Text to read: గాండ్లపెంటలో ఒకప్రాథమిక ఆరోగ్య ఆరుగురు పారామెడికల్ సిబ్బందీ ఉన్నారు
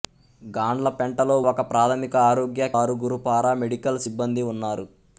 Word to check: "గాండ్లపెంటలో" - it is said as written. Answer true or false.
true